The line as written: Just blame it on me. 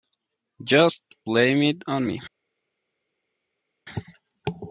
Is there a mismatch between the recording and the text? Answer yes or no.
no